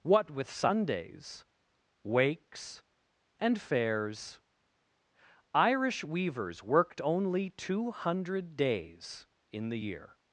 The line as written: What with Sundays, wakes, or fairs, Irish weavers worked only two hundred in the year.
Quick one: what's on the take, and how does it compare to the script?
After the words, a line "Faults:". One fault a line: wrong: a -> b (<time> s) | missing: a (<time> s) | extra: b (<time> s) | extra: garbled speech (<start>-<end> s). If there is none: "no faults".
What with Sundays, wakes, and fairs, Irish weavers worked only two hundred days in the year.
Faults:
wrong: or -> and (3.4 s)
extra: days (8.6 s)